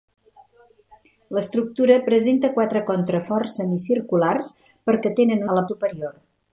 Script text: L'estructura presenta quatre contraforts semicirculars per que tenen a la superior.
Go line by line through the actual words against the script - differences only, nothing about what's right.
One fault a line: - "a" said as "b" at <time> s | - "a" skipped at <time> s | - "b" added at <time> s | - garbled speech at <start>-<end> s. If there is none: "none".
none